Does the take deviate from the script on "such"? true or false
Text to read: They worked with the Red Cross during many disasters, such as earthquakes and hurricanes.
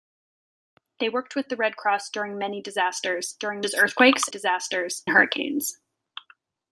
true